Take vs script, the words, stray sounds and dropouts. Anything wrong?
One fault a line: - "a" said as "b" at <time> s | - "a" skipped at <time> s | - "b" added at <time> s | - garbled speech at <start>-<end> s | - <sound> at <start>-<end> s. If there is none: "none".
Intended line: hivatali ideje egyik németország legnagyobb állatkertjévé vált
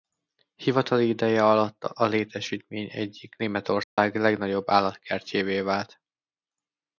- "alatt a létesítmény" added at 1.4 s
- dropout at 3.8-4.0 s